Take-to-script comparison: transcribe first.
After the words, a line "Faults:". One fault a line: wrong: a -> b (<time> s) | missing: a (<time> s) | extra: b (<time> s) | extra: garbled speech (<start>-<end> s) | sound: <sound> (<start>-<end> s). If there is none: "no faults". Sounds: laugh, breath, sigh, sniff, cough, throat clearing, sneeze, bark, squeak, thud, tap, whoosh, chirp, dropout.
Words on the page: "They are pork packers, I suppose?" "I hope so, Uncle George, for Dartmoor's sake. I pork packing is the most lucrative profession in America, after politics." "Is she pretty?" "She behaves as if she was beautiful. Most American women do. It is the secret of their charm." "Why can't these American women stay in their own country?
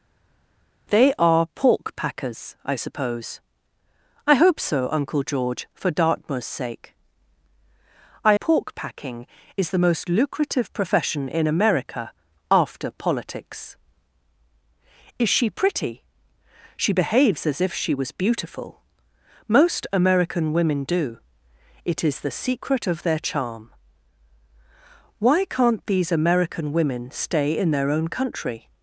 "They are pork packers, I suppose?" "I hope so, Uncle George, for Dartmoor's sake. I pork packing is the most lucrative profession in America, after politics." "Is she pretty?" "She behaves as if she was beautiful. Most American women do. It is the secret of their charm." "Why can't these American women stay in their own country?
Faults:
no faults